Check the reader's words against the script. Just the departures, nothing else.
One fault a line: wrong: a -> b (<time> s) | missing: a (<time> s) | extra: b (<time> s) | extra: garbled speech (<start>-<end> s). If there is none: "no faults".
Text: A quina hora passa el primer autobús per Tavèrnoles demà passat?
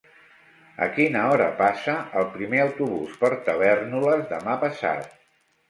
no faults